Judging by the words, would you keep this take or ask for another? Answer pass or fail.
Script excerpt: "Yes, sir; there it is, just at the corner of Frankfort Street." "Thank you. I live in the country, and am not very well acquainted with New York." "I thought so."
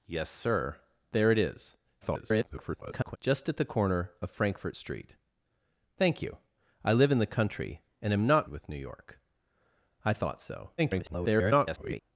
fail